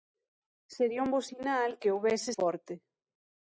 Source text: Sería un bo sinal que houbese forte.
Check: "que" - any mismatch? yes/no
no